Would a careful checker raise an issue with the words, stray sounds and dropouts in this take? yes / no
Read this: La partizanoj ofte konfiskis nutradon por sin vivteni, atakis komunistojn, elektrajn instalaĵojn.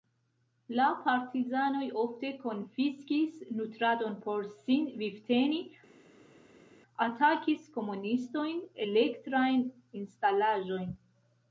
no